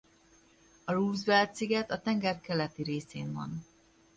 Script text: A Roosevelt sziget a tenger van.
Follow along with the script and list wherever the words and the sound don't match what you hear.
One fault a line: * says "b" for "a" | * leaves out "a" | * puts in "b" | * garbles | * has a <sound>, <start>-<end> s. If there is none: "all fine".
* puts in "keleti részén"